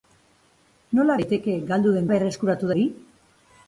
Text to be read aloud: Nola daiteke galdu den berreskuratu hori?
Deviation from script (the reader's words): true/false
false